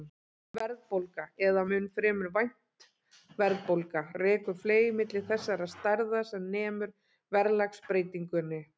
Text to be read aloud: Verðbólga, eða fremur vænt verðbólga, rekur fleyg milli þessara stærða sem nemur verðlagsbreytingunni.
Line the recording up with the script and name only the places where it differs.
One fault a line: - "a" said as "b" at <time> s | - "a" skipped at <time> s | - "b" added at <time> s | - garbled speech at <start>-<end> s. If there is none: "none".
- "mun" added at 1.7 s